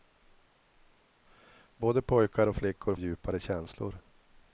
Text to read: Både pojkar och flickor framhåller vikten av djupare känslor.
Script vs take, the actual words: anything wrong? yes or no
yes